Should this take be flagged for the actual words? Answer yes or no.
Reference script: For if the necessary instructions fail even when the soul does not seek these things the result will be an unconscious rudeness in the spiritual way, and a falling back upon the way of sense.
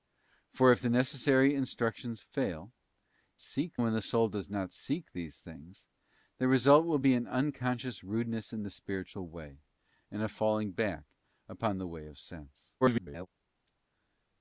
yes